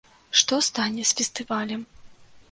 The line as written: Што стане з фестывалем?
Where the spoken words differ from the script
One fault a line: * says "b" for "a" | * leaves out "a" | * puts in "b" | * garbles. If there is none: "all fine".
all fine